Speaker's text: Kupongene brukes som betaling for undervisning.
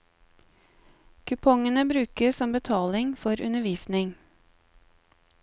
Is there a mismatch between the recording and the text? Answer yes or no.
no